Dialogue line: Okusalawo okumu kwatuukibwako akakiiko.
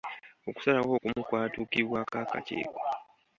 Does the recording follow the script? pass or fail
pass